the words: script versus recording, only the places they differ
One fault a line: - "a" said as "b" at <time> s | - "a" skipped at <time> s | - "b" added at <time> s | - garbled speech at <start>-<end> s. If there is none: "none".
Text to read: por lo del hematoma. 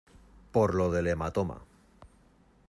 none